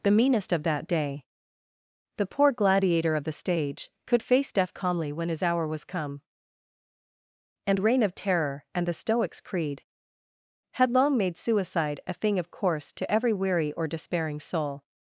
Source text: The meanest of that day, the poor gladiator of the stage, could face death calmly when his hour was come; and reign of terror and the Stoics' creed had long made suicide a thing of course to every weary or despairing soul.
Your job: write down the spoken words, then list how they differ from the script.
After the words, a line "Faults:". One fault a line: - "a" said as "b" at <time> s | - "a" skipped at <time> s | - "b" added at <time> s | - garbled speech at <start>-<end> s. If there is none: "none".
The meanest of that day, the poor gladiator of the stage, could face death calmly when his hour was come; and reign of terror and the Stoics' creed had long made suicide a thing of course to every weary or despairing soul.
Faults:
none